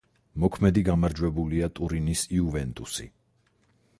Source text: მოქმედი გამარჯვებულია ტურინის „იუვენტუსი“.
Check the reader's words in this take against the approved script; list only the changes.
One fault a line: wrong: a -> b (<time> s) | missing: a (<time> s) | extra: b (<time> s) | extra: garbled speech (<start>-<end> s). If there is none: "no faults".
no faults